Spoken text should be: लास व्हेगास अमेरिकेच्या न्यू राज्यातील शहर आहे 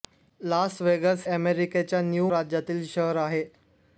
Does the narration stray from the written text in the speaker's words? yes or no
no